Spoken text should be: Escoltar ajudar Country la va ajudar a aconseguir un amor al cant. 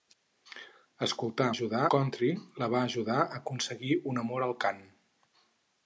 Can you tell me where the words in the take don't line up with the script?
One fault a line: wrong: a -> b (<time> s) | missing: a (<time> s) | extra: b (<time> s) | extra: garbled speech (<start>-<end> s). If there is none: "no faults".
no faults